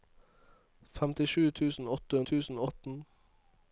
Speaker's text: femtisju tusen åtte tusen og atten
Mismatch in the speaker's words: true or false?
false